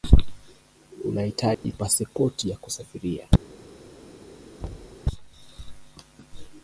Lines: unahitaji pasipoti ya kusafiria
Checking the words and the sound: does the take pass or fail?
fail